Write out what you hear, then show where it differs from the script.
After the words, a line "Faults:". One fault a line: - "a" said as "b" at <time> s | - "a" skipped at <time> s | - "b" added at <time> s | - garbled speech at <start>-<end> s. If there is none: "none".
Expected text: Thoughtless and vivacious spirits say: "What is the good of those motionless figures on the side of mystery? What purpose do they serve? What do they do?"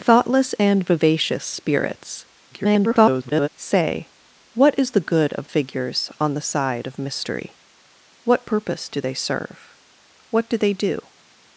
Thoughtless and vivacious spirits [garbled] say: "What is the good of figures on the side of mystery? What purpose do they serve? What do they do?"
Faults:
- garbled speech at 2.5-3.5 s
- "those motionless" skipped at 5.5 s